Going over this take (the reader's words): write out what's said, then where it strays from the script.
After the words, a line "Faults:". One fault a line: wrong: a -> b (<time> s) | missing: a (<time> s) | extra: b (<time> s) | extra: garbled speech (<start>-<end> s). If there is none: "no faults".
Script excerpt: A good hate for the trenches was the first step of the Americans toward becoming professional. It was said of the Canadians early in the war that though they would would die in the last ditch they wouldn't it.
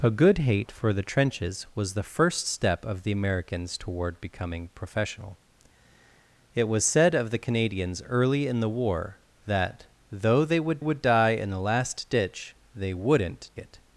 A good hate for the trenches was the first step of the Americans toward becoming professional. It was said of the Canadians early in the war that though they would would die in the last ditch they wouldn't it.
Faults:
no faults